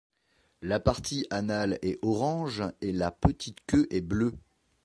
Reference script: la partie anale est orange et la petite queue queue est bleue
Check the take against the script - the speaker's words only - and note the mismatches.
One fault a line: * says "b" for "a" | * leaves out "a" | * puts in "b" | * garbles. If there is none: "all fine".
* leaves out "queue"